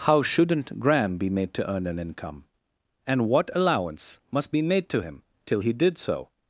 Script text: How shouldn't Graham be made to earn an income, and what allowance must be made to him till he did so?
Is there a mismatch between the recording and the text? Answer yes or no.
no